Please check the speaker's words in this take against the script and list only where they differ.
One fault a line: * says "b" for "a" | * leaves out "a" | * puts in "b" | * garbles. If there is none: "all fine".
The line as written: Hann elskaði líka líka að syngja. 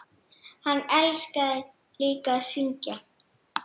* leaves out "líka"